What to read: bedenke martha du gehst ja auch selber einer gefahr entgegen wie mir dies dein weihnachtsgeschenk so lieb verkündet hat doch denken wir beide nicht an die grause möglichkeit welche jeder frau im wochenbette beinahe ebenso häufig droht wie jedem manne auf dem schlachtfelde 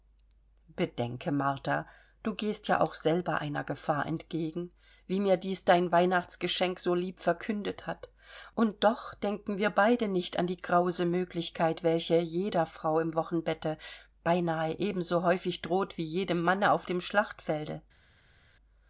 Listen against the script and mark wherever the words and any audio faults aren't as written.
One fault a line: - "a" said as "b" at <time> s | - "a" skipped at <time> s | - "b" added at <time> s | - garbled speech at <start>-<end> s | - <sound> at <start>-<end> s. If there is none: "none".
- "und" added at 8.6 s